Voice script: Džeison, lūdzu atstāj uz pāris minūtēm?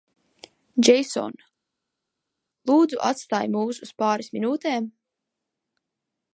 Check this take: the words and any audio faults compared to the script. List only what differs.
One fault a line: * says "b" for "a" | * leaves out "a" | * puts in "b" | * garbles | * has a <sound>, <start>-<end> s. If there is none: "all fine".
* puts in "mūs"